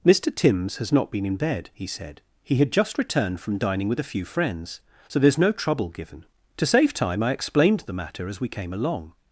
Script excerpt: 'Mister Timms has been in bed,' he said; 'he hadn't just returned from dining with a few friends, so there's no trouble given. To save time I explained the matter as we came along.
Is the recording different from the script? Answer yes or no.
yes